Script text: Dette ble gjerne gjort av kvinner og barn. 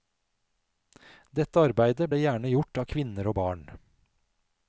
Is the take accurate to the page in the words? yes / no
no